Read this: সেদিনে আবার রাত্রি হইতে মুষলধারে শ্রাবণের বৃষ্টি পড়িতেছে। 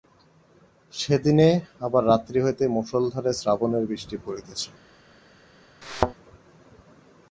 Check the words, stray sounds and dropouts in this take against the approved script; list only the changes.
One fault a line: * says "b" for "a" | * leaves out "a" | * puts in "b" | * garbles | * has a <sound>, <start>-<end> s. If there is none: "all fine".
* has a thud, 5.8-6.1 s